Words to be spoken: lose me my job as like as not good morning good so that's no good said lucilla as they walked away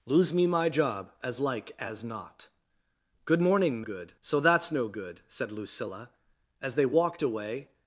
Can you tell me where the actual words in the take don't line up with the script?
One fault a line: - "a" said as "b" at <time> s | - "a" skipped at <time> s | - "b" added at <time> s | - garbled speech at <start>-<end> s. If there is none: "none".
none